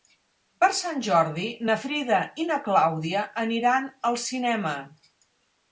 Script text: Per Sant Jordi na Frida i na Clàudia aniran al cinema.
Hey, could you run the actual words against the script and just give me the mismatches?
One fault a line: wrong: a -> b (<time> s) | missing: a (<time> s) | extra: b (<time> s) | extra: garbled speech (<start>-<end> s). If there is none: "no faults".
no faults